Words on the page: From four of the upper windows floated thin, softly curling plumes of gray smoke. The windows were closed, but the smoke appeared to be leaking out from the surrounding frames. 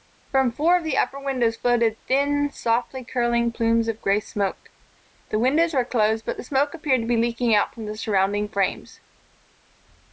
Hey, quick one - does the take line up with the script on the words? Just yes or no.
yes